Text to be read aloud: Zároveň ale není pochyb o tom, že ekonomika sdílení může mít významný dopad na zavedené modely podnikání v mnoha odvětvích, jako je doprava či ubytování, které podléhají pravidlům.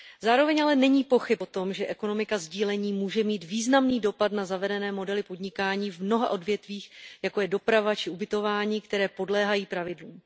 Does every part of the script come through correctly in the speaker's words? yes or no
yes